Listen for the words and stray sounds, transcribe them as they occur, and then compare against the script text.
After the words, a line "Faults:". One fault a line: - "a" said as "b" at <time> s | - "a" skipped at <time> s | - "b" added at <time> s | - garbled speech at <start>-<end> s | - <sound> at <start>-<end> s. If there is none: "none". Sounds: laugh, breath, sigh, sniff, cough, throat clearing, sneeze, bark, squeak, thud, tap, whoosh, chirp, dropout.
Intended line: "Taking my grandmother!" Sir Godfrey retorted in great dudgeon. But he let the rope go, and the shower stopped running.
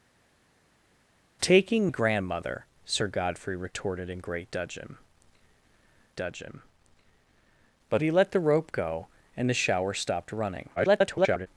"Taking grandmother!" Sir Godfrey retorted in great dudgeon dudgeon. But he let the rope go, and the shower stopped running. [garbled]
Faults:
- "my" skipped at 1.9 s
- "dudgeon" added at 6.1 s
- garbled speech at 10.8-11.5 s